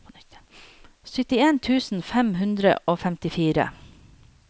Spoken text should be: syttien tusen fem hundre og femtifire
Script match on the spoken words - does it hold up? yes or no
yes